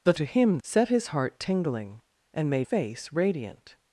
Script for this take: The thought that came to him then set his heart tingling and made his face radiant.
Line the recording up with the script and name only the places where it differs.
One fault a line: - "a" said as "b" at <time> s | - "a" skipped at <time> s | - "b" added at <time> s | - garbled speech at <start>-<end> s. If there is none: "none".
- "thought that came" skipped at 0.1 s
- "then" skipped at 0.6 s
- "his" skipped at 2.7 s